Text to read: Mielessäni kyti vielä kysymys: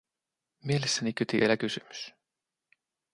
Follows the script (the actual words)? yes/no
yes